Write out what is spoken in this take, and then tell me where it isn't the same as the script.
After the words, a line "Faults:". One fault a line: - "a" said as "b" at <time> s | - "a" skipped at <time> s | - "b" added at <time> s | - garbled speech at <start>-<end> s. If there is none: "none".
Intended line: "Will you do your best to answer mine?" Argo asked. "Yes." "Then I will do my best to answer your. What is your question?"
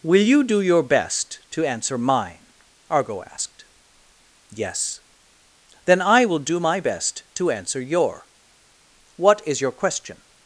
"Will you do your best to answer mine?" Argo asked. "Yes." "Then I will do my best to answer your. What is your question?"
Faults:
none